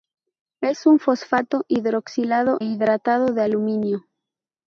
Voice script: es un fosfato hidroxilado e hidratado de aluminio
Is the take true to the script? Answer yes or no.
no